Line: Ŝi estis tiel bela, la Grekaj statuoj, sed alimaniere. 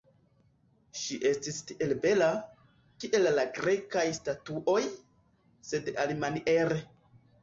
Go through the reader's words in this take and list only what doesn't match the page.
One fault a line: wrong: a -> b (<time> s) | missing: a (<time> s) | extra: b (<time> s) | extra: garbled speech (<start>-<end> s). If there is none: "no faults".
extra: kiel (3.0 s)